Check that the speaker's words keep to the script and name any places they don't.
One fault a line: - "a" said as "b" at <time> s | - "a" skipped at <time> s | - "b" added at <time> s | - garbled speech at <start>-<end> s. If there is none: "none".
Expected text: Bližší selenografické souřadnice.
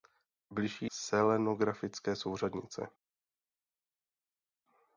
none